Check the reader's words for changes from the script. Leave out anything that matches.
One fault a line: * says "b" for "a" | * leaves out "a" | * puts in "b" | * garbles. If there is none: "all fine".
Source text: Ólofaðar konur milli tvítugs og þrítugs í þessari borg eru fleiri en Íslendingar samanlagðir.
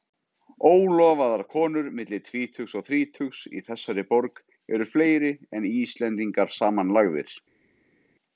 all fine